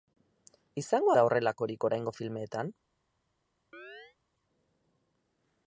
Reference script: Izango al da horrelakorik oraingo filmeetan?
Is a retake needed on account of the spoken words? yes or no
yes